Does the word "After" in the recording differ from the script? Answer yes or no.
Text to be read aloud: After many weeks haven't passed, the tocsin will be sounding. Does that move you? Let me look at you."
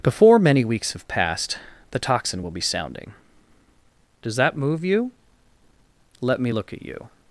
yes